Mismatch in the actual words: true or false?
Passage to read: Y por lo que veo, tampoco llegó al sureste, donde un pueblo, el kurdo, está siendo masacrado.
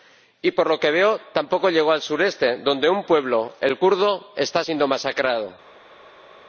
false